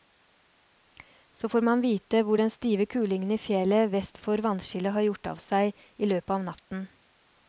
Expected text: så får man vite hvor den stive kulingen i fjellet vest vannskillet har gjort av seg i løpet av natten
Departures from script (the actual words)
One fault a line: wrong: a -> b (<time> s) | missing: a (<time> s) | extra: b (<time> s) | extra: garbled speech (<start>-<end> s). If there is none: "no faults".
extra: for (4.2 s)